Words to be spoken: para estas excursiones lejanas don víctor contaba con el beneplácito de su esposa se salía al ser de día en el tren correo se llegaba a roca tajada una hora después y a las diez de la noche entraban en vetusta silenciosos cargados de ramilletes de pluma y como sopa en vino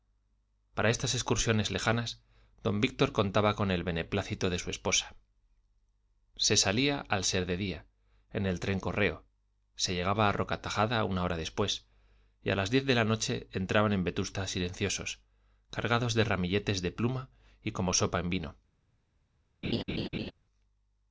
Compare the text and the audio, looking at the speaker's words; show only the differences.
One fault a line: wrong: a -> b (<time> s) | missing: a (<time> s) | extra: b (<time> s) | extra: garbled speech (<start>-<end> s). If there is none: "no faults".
no faults